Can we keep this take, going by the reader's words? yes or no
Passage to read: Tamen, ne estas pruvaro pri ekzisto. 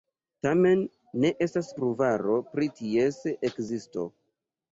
no